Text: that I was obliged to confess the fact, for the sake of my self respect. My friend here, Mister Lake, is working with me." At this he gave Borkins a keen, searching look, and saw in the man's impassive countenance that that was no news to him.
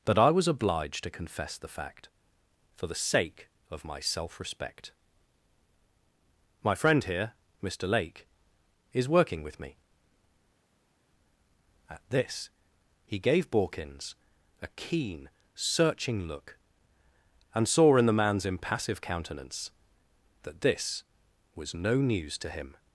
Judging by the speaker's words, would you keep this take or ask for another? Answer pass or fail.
fail